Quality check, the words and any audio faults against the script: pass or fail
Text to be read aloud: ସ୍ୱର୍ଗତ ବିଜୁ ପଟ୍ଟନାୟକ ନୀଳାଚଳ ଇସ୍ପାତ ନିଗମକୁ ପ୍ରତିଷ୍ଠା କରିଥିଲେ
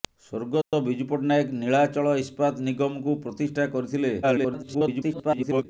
fail